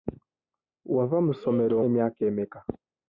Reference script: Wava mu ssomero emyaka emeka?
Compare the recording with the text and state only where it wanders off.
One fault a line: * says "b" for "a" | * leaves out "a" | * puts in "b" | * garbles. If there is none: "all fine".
all fine